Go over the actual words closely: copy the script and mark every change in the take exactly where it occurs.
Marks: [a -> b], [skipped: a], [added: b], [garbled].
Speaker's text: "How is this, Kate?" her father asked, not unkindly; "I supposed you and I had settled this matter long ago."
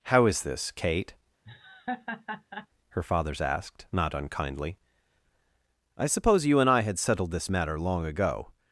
"How is this, Kate?" her [father -> fathers] asked, not unkindly; "I [supposed -> suppose] you and I had settled this matter long ago."